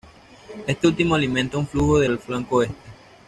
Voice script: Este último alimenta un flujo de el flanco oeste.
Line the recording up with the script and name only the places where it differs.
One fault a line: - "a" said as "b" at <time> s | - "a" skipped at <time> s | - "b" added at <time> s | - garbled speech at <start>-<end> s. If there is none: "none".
none